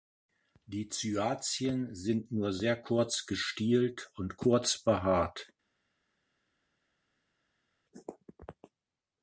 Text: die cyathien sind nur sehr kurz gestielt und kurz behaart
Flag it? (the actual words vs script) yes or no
no